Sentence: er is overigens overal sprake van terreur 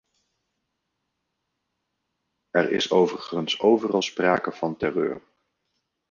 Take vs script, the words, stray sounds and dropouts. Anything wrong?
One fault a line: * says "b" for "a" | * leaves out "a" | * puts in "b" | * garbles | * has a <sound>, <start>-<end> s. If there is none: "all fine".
all fine